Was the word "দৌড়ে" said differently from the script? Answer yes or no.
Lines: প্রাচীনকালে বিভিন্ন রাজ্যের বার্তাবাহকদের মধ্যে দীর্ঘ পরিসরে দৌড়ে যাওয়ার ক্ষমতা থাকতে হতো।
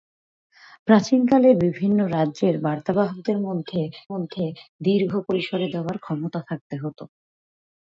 yes